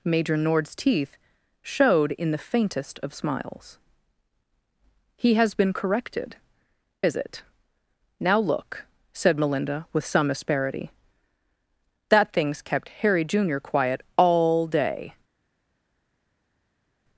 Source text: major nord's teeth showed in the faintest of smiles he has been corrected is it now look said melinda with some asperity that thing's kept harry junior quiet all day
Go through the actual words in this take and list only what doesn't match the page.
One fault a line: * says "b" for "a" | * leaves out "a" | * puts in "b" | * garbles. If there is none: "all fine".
all fine